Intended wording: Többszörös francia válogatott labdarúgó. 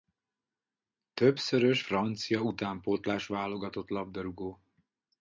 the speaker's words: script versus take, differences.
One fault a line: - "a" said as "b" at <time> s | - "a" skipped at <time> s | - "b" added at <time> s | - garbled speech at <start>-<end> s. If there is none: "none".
- "utánpótlás" added at 2.4 s